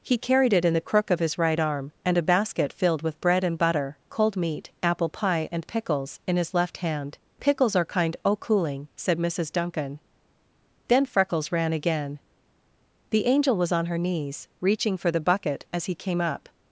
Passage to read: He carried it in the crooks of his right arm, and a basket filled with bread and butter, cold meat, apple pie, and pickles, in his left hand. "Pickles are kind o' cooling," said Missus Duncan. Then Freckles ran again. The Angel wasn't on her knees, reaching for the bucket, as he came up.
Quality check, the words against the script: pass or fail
fail